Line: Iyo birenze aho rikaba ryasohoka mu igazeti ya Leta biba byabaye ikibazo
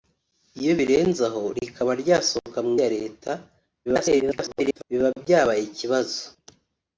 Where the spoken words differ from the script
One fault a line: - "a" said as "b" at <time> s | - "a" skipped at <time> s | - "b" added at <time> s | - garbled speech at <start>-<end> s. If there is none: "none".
- "igazeti" skipped at 2.7 s
- garbled speech at 3.9-4.8 s